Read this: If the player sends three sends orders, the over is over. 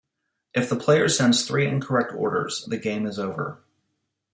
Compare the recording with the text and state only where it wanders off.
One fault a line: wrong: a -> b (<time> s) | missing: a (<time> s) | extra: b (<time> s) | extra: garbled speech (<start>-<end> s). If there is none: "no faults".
wrong: sends -> incorrect (1.7 s)
wrong: over -> game (2.8 s)